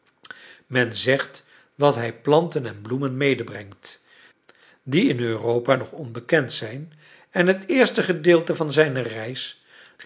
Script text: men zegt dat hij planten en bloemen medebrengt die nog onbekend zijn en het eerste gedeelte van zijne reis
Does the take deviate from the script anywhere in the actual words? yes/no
yes